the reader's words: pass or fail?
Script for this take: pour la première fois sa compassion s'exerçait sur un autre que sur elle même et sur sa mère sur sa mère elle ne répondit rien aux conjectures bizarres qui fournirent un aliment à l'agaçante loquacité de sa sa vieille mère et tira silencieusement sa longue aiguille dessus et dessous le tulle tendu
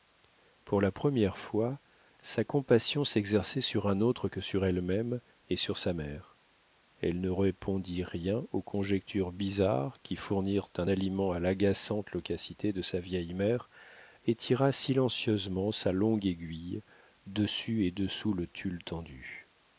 fail